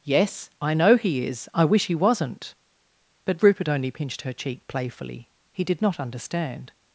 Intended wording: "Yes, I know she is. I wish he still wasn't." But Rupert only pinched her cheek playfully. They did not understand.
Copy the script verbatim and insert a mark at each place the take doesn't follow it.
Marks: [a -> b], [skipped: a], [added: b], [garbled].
"Yes, I know [she -> he] is. I wish he [skipped: still] wasn't." But Rupert only pinched her cheek playfully. [They -> He] did not understand.